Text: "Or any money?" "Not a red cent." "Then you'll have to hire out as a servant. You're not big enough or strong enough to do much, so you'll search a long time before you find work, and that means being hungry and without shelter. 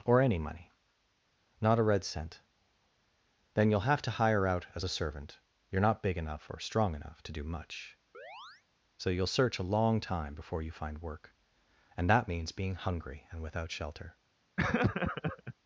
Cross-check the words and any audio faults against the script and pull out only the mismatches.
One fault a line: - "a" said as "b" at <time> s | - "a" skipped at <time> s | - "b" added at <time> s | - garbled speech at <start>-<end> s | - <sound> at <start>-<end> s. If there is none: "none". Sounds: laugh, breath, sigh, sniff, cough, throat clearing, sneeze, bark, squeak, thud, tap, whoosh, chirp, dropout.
- chirp at 8.1-8.6 s
- laugh at 14.6-15.5 s